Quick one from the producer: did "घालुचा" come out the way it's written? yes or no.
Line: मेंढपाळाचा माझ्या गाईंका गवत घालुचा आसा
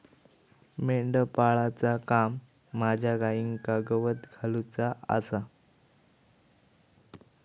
yes